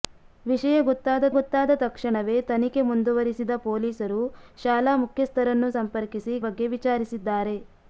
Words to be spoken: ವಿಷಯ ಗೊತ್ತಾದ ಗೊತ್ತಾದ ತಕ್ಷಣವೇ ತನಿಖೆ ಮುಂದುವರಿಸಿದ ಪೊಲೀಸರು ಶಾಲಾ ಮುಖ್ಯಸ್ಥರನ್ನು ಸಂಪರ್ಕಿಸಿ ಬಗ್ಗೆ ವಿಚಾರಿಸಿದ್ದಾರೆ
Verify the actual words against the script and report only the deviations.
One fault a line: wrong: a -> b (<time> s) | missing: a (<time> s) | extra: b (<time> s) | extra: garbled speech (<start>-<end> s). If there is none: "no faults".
no faults